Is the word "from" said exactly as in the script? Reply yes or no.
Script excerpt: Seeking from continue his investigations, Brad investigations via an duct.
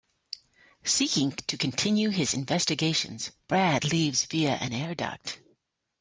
no